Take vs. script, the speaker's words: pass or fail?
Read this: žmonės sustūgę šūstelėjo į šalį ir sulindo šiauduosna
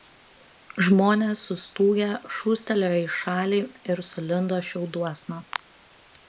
pass